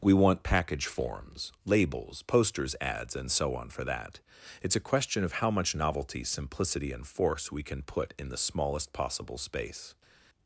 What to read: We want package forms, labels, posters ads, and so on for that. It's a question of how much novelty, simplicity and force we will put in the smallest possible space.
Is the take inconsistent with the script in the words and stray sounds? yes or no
yes